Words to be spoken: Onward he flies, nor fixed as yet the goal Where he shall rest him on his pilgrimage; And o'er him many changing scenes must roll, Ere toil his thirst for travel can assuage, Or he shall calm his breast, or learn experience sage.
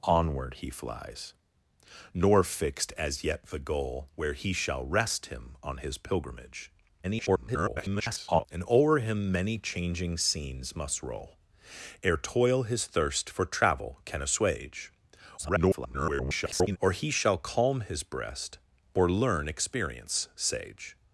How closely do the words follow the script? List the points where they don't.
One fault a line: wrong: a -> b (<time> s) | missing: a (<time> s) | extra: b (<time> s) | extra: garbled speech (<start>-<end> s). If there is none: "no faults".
extra: garbled speech (7.0-8.5 s)
extra: garbled speech (15.4-16.8 s)